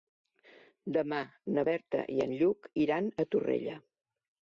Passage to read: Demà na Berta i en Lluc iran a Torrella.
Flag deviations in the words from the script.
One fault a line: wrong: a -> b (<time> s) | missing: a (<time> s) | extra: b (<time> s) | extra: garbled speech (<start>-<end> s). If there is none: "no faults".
no faults